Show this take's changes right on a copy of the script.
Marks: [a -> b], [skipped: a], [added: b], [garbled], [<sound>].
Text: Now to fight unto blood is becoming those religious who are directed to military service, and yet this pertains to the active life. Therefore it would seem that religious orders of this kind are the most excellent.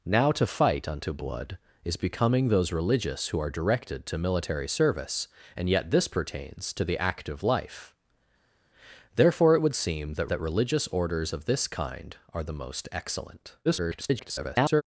Now to fight unto blood is becoming those religious who are directed to military service, and yet this pertains to the active life. Therefore it would seem that [added: that] religious orders of this kind are the most excellent. [garbled]